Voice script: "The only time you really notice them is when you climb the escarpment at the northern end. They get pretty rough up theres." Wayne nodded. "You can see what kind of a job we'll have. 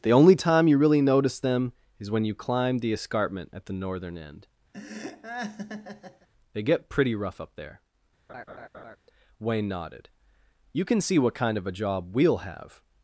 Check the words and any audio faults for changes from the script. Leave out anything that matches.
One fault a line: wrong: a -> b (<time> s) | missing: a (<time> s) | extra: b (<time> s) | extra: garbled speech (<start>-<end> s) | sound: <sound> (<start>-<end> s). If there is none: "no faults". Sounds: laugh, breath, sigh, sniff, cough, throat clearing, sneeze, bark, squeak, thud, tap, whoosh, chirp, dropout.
sound: laugh (4.7-6.3 s)
wrong: theres -> there (7.6 s)
sound: laugh (8.3-9.0 s)